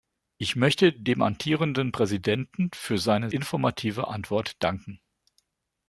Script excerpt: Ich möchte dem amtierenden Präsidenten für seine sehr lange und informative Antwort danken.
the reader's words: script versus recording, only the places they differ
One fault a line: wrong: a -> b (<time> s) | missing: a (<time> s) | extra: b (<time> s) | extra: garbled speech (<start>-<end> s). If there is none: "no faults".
missing: sehr lange und (3.3 s)